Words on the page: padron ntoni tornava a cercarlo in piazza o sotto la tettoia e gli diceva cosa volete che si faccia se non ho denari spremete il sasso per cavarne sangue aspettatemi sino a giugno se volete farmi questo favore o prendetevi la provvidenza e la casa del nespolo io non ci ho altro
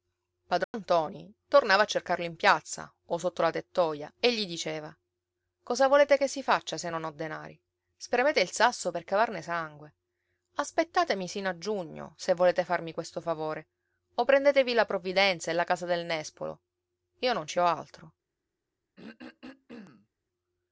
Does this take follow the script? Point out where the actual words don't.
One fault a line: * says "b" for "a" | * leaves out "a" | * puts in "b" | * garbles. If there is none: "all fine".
all fine